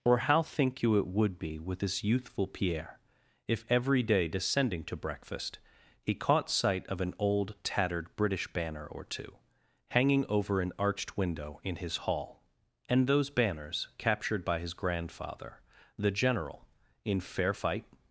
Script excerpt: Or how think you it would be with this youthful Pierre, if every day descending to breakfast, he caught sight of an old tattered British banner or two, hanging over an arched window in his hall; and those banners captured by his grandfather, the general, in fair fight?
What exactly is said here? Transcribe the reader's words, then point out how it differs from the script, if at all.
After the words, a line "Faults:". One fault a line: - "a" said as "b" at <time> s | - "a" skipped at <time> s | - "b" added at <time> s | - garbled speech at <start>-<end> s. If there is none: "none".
Or how think you it would be with this youthful Pierre, if every day descending to breakfast, he caught sight of an old tattered British banner or two, hanging over an arched window in his hall; and those banners captured by his grandfather, the general, in fair fight?
Faults:
none